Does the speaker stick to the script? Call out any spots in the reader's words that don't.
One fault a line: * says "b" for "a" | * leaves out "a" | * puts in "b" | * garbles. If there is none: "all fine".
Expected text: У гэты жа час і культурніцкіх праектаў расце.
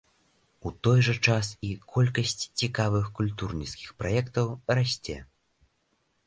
* says "той" for "гэты"
* puts in "колькасць цікавых"